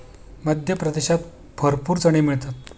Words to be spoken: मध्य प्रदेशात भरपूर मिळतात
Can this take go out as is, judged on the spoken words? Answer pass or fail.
fail